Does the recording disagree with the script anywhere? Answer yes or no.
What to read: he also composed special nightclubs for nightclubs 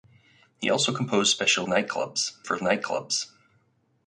no